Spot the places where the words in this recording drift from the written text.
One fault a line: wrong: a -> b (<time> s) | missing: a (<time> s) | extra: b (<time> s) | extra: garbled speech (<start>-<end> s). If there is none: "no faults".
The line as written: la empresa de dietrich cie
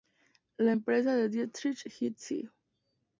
extra: et (1.9 s)